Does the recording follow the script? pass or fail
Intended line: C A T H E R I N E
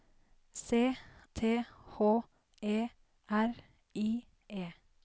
fail